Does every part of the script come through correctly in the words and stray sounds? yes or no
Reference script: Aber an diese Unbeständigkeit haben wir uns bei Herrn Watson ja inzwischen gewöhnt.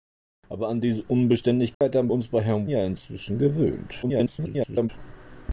no